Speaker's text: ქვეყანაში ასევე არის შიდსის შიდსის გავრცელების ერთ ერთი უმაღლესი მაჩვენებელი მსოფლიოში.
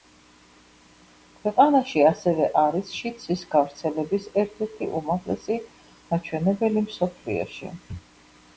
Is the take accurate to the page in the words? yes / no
no